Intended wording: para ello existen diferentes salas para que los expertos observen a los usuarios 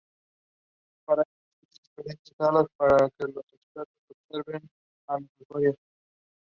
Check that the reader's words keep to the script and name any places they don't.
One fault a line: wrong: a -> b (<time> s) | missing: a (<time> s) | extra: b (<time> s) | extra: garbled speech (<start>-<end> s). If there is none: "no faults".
no faults